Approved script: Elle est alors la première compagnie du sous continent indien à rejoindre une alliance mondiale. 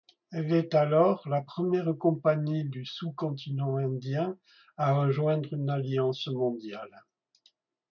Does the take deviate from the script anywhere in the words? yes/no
no